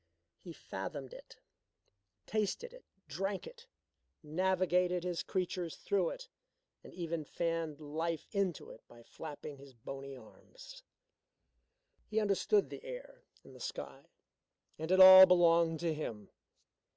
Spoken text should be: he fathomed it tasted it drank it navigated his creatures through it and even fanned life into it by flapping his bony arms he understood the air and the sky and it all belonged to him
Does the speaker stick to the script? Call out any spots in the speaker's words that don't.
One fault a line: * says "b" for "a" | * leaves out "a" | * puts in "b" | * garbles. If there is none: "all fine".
all fine